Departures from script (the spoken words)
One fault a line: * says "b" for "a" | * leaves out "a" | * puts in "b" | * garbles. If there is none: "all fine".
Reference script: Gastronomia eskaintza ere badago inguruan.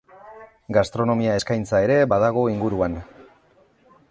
all fine